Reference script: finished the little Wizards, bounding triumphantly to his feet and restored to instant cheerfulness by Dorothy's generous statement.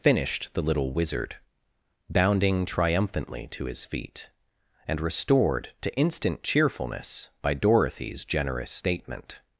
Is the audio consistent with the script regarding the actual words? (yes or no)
no